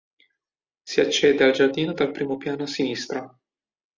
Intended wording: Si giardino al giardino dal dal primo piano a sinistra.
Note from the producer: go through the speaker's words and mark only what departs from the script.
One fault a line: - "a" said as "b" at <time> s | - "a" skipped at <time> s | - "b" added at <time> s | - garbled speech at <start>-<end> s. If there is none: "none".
- "giardino" said as "accede" at 1.0 s
- "dal" skipped at 2.1 s